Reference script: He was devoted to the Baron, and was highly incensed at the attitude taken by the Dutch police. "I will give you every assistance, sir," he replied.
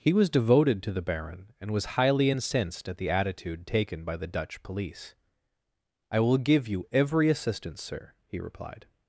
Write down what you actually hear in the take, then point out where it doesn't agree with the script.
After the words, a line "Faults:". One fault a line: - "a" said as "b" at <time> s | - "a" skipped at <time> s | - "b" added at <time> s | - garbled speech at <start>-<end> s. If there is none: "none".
He was devoted to the Baron, and was highly incensed at the attitude taken by the Dutch police. "I will give you every assistance, sir," he replied.
Faults:
none